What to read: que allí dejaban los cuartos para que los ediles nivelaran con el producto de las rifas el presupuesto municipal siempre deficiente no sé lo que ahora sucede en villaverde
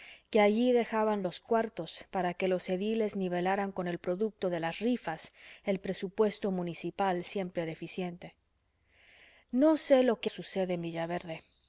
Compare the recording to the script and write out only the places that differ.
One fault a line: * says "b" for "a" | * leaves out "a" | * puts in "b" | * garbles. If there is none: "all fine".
* leaves out "ahora"